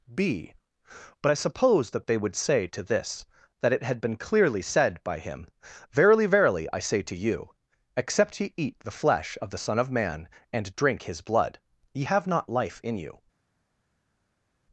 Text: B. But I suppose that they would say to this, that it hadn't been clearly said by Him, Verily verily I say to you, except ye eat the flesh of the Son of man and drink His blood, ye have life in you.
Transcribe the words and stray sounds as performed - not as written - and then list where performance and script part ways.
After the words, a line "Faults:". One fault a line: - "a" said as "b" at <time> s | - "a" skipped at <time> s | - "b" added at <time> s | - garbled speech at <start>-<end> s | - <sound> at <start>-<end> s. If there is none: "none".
B. But I suppose that they would say to this, that it had been clearly said by Him, Verily verily I say to you, except ye eat the flesh of the Son of man and drink His blood, ye have not life in you.
Faults:
- "hadn't" said as "had" at 3.8 s
- "not" added at 12.3 s